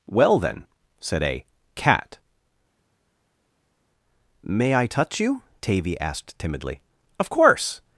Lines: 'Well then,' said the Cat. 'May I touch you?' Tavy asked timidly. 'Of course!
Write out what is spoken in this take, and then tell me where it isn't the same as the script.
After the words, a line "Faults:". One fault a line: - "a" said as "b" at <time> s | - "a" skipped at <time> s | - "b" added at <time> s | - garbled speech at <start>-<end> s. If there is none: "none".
'Well then,' said a Cat. 'May I touch you?' Tavy asked timidly. 'Of course!
Faults:
- "the" said as "a" at 1.2 s